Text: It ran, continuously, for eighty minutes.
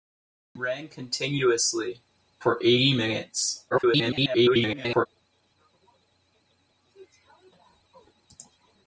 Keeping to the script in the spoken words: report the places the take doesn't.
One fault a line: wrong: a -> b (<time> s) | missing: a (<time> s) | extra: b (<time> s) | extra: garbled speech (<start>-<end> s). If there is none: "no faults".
extra: garbled speech (3.7-5.1 s)